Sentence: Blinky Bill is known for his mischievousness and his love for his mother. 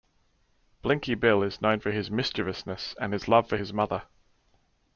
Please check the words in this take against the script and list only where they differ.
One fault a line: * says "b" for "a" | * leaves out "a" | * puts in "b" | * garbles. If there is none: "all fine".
all fine